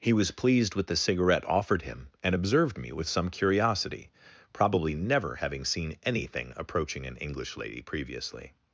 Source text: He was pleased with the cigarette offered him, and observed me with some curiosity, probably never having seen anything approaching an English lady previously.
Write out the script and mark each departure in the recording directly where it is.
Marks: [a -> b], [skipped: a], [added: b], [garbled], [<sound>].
He was pleased with the cigarette offered him, and observed me with some curiosity, probably never having seen anything approaching an English lady previously.